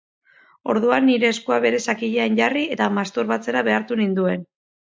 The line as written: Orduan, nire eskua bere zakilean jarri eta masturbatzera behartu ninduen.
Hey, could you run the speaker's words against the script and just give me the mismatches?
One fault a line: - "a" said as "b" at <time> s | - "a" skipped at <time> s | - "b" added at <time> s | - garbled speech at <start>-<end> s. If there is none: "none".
none